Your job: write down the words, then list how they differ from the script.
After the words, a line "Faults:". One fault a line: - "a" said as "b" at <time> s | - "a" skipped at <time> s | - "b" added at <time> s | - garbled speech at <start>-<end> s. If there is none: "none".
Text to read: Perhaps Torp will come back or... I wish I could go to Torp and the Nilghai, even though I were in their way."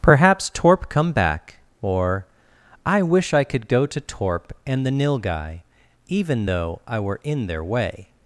Perhaps Torp come back or... I wish I could go to Torp and the Nilghai, even though I were in their way."
Faults:
- "will" skipped at 0.9 s